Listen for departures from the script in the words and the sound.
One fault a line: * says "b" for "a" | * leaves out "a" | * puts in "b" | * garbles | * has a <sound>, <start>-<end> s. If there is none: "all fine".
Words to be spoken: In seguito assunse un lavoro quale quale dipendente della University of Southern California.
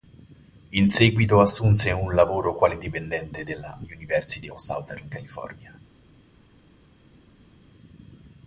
* leaves out "quale"